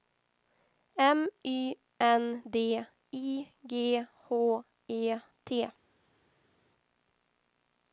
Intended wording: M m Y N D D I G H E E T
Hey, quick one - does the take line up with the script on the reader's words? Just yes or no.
no